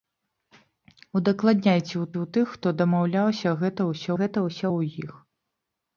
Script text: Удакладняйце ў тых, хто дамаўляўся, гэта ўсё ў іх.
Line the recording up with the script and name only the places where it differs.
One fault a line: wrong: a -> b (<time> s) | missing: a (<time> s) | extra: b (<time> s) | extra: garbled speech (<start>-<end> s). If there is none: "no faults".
extra: ў (2.1 s)
extra: гэта ўсё (4.2 s)